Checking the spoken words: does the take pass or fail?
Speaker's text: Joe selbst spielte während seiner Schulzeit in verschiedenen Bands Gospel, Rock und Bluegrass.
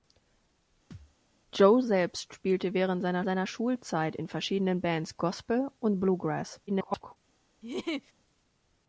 fail